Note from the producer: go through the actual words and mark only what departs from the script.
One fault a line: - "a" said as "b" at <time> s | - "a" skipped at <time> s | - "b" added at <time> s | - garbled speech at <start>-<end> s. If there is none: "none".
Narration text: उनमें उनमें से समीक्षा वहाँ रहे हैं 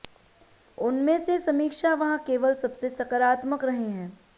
- "उनमें" skipped at 1.2 s
- "केवल सबसे सकारात्मक" added at 2.3 s